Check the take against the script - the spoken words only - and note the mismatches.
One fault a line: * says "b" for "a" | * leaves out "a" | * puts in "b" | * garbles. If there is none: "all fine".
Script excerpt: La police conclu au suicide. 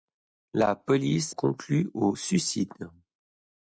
all fine